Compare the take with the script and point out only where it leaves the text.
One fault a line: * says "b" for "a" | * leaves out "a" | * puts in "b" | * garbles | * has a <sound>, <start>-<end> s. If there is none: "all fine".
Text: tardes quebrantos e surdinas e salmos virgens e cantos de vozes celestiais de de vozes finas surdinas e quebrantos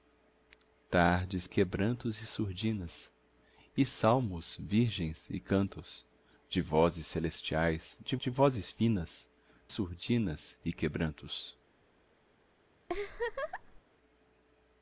* has a laugh, 12.9-13.8 s